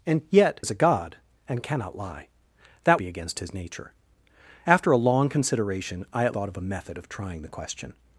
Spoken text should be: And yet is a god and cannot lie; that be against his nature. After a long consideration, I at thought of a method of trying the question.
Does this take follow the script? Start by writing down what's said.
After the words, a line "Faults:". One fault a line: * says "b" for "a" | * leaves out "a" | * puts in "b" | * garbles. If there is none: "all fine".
And yet is a god and cannot lie; that be against his nature. After a long consideration, I at thought of a method of trying the question.
Faults:
all fine